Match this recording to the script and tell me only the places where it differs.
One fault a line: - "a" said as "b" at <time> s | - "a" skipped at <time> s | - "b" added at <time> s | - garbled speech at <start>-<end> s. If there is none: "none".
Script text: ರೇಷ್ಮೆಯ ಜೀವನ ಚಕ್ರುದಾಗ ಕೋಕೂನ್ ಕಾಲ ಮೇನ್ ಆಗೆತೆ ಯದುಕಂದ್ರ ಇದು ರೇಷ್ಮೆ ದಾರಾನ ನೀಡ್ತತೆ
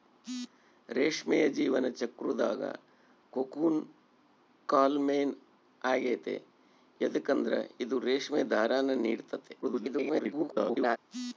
- garbled speech at 9.6-11.0 s